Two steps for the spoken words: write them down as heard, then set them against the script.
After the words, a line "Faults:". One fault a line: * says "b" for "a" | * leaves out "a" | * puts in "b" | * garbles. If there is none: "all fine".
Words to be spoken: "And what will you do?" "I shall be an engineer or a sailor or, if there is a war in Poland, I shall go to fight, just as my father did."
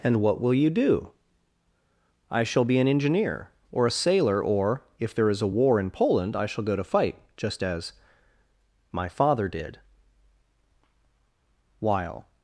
"And what will you do?" "I shall be an engineer or a sailor or, if there is a war in Poland, I shall go to fight, just as my father did." While
Faults:
* puts in "While"